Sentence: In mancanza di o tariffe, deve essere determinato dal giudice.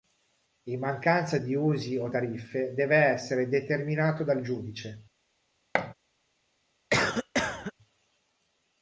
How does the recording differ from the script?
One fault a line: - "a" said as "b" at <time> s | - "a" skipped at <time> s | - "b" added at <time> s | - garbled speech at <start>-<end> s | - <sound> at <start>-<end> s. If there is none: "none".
- "usi" added at 1.5 s
- thud at 5.7-5.9 s
- cough at 6.9-7.7 s